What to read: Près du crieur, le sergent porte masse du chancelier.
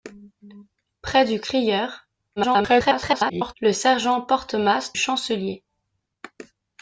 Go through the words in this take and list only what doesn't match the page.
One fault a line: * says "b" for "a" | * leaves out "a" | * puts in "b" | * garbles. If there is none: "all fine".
* garbles
* leaves out "du"